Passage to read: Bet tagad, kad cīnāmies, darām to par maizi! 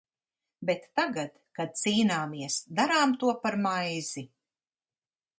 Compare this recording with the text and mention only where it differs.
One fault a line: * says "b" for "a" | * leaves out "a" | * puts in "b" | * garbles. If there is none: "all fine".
all fine